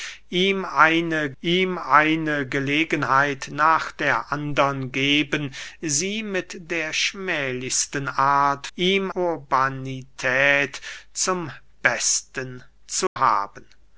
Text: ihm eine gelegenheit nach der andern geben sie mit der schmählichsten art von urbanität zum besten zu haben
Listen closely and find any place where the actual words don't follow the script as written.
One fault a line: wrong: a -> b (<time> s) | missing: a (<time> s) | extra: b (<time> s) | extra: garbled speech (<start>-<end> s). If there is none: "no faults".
extra: ihm eine (1.4 s)
wrong: von -> ihm (8.8 s)